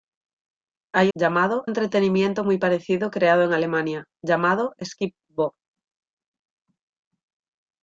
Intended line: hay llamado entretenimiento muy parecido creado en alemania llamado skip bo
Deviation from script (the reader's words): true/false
false